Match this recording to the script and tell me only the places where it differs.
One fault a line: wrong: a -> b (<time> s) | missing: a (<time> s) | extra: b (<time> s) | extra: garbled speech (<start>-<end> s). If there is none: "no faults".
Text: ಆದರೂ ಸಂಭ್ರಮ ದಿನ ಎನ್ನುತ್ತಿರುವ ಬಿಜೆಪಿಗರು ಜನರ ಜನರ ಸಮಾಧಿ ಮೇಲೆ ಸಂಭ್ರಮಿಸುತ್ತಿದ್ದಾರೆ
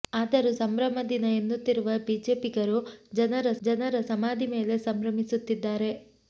no faults